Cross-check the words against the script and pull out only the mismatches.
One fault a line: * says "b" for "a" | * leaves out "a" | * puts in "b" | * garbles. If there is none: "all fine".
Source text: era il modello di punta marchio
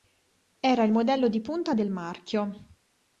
* puts in "del"